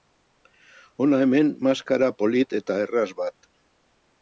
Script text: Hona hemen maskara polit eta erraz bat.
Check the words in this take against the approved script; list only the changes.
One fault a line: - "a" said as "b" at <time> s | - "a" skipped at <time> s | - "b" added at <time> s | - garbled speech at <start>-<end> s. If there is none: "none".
none